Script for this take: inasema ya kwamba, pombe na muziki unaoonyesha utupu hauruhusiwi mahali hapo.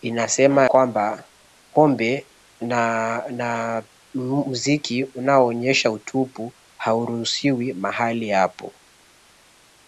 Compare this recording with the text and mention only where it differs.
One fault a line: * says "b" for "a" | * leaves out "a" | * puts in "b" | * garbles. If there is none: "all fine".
* leaves out "ya"